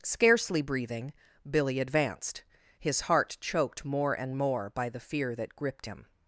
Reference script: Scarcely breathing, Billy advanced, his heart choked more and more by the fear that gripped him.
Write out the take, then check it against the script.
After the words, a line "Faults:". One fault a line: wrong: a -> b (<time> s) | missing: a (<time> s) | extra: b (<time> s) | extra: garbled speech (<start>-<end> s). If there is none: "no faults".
Scarcely breathing, Billy advanced, his heart choked more and more by the fear that gripped him.
Faults:
no faults